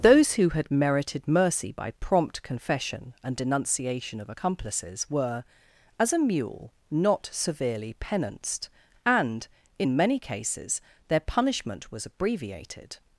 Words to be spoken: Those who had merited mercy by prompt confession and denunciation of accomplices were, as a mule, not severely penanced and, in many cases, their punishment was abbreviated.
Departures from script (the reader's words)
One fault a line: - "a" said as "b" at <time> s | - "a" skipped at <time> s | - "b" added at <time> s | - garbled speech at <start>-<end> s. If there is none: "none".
none